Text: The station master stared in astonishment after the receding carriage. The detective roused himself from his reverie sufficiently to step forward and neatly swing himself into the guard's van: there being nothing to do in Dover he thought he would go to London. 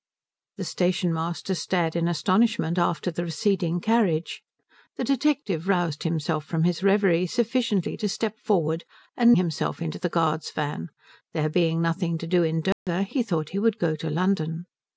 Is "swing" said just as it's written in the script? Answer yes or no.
no